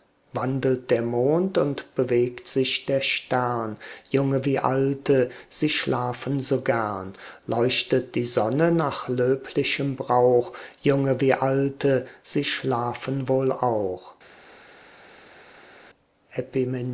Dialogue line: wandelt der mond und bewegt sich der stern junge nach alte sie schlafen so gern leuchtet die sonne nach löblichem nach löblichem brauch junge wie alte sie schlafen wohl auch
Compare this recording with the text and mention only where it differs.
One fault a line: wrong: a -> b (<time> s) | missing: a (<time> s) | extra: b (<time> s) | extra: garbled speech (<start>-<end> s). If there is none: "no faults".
wrong: nach -> wie (4.5 s)
missing: nach löblichem (9.9 s)